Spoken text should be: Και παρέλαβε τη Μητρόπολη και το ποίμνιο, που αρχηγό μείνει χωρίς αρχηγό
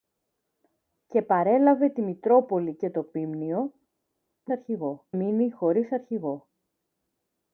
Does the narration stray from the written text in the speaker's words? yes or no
no